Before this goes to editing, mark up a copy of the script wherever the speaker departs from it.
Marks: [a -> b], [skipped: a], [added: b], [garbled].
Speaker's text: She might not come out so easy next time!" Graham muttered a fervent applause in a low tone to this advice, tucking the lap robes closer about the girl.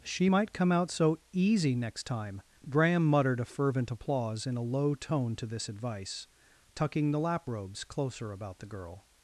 She might [skipped: not] come out so easy next time!" Graham muttered a fervent applause in a low tone to this advice, tucking the lap robes closer about the girl.